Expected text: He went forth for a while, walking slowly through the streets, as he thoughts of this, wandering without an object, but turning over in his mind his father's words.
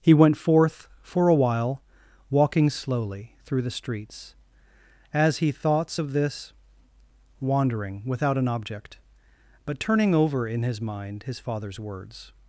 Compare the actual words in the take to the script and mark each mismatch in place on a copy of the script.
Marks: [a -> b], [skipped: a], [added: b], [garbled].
He went forth for a while, walking slowly through the streets, as he thoughts of this, wandering without an object, but turning over in his mind his father's words.